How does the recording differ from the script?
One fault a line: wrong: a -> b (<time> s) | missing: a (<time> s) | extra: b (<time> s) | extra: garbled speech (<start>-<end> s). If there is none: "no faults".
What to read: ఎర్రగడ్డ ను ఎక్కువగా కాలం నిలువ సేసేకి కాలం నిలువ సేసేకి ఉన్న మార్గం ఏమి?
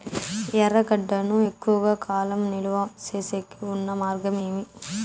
missing: కాలం నిలువ సేసేకి (3.6 s)